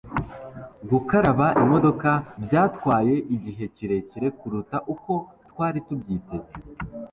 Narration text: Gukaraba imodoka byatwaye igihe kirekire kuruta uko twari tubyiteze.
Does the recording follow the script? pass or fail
pass